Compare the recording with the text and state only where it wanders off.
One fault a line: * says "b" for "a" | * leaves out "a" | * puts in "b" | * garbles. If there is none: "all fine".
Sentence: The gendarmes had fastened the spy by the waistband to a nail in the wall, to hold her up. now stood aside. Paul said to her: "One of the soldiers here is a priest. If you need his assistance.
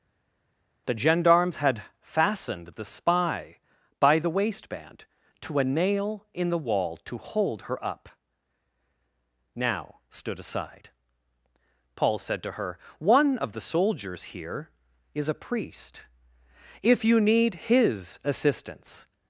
all fine